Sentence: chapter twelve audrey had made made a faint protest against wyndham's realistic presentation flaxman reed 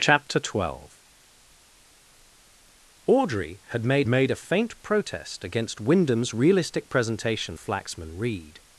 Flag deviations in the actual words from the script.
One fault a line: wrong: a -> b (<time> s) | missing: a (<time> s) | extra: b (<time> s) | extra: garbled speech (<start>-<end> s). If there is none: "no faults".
no faults